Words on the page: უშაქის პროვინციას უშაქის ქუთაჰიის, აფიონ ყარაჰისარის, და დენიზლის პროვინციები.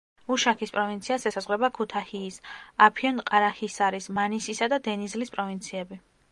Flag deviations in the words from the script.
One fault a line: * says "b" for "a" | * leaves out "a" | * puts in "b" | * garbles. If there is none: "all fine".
* says "ესაზღვრება" for "უშაქის"
* puts in "მანისისა"